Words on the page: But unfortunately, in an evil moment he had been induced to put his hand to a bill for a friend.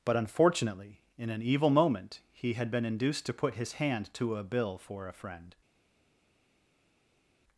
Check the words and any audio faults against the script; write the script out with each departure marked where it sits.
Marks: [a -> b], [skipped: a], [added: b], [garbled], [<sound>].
But unfortunately, in an evil moment he had been induced to put his hand to a bill for a friend.